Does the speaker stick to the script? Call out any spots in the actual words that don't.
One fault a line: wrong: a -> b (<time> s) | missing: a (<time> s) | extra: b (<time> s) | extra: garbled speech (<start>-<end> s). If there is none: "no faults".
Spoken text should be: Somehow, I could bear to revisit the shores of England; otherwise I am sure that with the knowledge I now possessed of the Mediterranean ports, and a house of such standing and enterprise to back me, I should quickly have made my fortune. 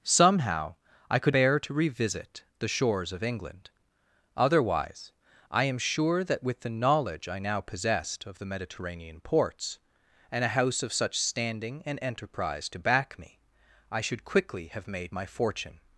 no faults